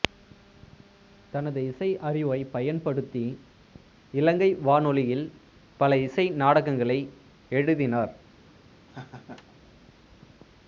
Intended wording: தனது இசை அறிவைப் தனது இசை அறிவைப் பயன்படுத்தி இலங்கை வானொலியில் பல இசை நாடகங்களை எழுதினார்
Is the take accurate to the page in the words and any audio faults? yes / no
no